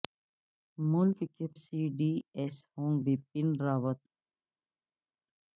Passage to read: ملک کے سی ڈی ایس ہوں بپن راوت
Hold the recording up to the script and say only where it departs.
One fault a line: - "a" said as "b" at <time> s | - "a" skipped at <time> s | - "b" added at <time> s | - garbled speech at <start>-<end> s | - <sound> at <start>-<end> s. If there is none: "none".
none